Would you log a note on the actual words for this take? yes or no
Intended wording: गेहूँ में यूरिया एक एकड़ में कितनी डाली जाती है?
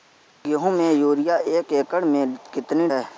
yes